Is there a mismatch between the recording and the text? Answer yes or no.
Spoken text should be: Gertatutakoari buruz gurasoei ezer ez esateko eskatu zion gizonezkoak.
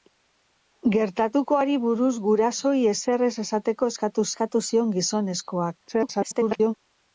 yes